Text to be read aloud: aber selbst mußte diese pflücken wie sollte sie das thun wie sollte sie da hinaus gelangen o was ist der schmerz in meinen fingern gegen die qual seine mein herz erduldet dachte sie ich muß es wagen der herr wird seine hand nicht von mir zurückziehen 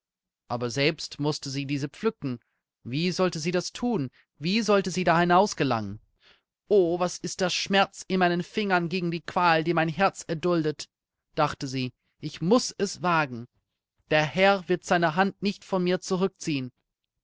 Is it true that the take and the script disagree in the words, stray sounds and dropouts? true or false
true